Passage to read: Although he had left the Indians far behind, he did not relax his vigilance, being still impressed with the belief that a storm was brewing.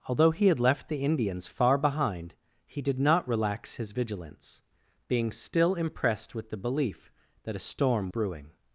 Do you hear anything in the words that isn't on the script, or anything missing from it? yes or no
yes